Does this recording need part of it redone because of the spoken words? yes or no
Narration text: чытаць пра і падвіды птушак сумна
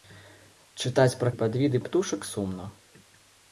no